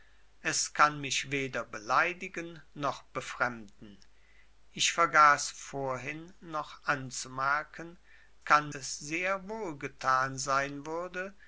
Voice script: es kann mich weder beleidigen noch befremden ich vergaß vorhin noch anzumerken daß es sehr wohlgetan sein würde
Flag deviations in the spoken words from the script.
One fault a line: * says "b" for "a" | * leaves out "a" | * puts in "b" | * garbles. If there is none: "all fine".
* says "kann" for "daß"